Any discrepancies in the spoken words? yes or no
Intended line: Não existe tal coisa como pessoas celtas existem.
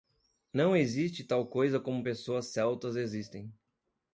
no